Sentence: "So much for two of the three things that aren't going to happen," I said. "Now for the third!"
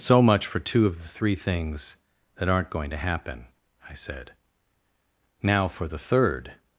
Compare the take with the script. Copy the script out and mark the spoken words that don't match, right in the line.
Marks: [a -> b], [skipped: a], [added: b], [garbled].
"So much for two of the three things that aren't going to happen," I said. "Now for the third!"